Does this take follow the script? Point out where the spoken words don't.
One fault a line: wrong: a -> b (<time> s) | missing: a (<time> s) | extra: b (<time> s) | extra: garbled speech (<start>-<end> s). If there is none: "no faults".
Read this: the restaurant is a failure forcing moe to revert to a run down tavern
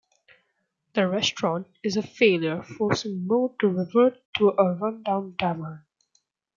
no faults